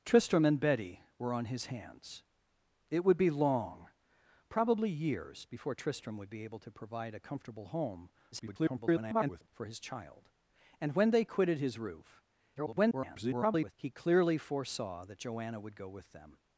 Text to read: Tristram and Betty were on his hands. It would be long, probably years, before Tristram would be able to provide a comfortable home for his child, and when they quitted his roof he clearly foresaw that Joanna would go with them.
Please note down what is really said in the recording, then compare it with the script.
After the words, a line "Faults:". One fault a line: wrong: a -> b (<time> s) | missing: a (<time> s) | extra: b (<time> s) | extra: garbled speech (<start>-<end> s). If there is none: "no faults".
Tristram and Betty were on his hands. It would be long, probably years, before Tristram would be able to provide a comfortable home [garbled] for his child, and when they quitted his roof [garbled] he clearly foresaw that Joanna would go with them.
Faults:
extra: garbled speech (8.3-9.5 s)
extra: garbled speech (12.6-13.7 s)